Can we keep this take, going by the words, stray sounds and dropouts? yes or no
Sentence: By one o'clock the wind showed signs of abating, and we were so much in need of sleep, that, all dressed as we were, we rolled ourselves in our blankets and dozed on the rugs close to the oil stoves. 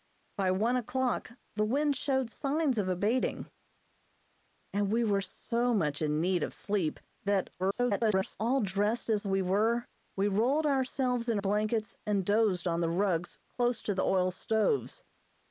no